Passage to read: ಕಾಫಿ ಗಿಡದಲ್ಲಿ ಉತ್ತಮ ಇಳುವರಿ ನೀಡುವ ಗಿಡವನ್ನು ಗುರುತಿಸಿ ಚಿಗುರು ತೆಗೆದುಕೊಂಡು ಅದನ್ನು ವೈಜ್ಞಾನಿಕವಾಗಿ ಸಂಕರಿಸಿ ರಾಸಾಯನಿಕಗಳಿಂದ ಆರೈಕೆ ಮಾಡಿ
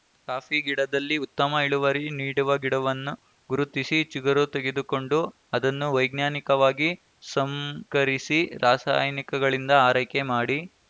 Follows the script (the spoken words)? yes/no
yes